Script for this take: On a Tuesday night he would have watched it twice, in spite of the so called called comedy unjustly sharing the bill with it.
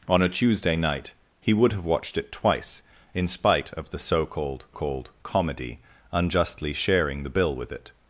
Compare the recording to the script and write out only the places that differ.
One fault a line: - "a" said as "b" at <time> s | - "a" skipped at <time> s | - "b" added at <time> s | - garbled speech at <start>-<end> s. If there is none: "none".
none